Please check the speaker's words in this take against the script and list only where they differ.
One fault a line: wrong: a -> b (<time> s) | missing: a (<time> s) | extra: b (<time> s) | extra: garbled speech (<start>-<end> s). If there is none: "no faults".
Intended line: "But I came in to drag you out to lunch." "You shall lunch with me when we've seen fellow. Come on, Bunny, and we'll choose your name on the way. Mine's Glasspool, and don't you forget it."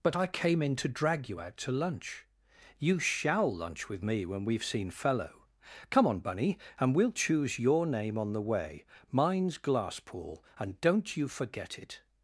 no faults